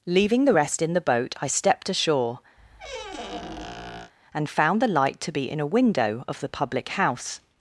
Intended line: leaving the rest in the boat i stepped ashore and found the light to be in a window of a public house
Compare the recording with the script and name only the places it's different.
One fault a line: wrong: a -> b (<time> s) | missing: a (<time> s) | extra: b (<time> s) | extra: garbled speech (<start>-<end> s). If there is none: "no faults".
wrong: a -> the (6.4 s)